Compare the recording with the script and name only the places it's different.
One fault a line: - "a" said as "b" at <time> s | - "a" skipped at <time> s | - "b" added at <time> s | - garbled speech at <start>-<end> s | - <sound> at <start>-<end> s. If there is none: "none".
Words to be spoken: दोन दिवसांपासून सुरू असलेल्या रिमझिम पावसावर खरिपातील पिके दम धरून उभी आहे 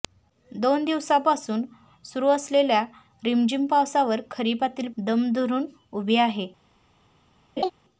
- "पिके" skipped at 4.9 s
- laugh at 7.6-7.7 s